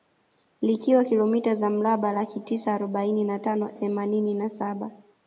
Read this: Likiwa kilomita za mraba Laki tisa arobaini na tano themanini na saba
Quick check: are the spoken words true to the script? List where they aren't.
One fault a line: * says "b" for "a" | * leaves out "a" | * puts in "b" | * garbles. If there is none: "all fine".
all fine